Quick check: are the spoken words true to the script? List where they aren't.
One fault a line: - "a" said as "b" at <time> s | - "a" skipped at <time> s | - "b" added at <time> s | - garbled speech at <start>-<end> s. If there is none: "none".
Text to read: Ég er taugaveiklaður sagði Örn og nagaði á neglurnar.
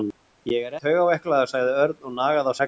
none